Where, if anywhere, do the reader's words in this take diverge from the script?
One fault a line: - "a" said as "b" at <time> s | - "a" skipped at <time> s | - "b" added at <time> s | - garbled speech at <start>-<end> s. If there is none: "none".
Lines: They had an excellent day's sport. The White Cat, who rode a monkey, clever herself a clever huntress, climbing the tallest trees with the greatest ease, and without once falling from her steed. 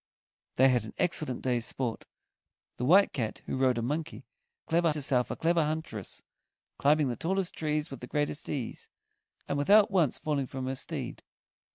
none